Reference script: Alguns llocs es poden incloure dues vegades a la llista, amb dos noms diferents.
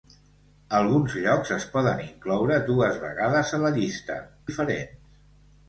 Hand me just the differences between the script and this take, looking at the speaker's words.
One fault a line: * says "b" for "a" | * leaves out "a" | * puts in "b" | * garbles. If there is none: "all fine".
* leaves out "amb dos noms"